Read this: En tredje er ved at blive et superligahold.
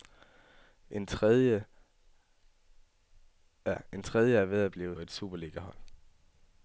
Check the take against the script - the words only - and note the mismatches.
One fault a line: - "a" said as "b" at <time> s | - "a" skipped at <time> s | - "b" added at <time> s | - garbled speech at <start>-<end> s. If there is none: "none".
none